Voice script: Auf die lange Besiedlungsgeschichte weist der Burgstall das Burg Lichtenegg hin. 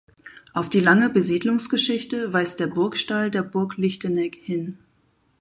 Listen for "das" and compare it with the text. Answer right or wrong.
wrong